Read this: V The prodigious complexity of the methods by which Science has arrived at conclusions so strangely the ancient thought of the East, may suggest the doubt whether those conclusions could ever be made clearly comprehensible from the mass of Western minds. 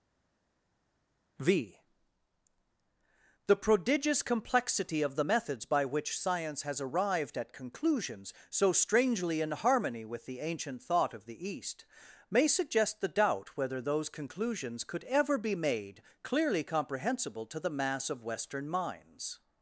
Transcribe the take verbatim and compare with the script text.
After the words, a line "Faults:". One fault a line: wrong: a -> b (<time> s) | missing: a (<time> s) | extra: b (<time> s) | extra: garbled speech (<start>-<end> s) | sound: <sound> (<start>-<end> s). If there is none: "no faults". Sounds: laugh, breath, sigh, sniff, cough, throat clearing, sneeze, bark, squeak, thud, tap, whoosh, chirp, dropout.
V The prodigious complexity of the methods by which Science has arrived at conclusions so strangely in harmony with the ancient thought of the East, may suggest the doubt whether those conclusions could ever be made clearly comprehensible to the mass of Western minds.
Faults:
extra: in harmony with (9.4 s)
wrong: from -> to (17.5 s)